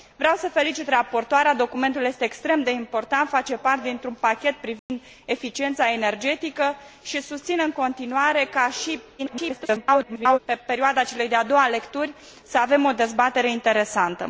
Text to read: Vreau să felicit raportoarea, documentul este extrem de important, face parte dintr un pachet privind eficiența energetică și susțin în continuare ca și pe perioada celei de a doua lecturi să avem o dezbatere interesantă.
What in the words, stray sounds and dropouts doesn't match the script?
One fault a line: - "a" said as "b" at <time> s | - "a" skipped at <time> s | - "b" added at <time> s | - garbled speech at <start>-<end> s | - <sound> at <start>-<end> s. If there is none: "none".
- dropout at 4.8-4.9 s
- garbled speech at 9.2-10.4 s